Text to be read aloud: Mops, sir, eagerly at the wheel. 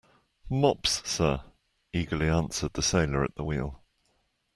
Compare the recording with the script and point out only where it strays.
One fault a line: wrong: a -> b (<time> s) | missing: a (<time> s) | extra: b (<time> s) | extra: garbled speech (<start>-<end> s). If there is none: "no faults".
extra: answered the sailor (2.3 s)